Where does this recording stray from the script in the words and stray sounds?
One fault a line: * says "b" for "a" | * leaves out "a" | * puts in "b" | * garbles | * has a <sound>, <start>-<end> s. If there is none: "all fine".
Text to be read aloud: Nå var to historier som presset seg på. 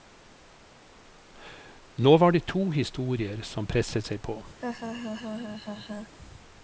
* puts in "det"
* has a laugh, 4.6-6.1 s